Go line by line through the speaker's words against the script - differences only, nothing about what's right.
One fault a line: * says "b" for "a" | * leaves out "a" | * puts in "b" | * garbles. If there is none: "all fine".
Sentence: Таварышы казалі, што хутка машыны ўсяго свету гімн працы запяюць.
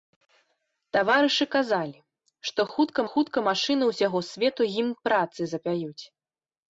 * puts in "хутка"